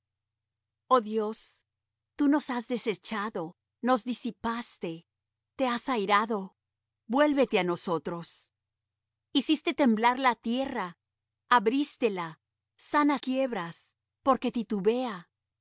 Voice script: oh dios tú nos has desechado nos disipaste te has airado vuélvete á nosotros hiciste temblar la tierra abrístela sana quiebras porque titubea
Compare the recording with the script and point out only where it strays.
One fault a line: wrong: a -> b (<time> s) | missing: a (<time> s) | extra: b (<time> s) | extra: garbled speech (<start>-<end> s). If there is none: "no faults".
no faults